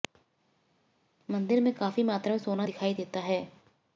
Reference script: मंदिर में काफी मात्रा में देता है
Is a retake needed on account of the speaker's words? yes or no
yes